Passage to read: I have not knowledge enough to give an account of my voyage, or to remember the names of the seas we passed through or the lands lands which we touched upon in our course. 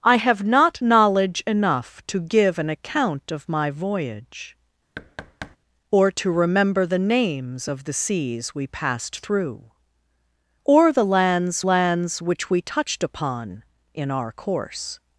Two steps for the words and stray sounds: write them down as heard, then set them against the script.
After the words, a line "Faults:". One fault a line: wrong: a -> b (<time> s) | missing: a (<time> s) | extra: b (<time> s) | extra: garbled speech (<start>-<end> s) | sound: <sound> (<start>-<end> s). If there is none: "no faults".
I have not knowledge enough to give an account of my voyage, or to remember the names of the seas we passed through or the lands lands which we touched upon in our course.
Faults:
sound: thud (5.0-5.6 s)